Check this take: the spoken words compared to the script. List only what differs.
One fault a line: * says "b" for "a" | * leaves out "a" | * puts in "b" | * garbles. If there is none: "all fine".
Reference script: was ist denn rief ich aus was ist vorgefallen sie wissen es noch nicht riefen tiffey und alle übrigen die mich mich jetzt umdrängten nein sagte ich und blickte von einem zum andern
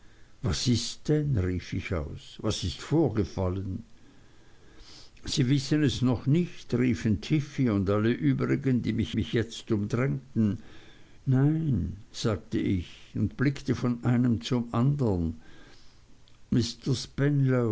all fine